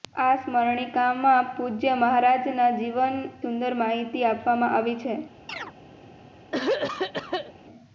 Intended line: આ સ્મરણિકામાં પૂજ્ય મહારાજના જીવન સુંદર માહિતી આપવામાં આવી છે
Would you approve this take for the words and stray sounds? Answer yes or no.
no